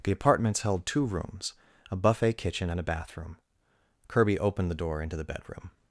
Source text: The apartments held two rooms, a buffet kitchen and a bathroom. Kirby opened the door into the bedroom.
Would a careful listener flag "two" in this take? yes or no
no